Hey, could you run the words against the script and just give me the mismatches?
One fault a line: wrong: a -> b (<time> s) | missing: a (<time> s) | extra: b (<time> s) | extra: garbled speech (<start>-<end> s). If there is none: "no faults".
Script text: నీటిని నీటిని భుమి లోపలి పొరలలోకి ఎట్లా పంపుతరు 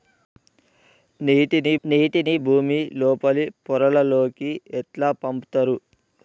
no faults